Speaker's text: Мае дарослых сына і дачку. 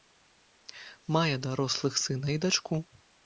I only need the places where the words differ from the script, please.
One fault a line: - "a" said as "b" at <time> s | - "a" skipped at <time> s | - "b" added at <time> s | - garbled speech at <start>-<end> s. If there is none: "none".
none